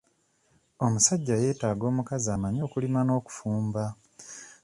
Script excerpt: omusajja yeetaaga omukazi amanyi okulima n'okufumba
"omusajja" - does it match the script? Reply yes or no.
yes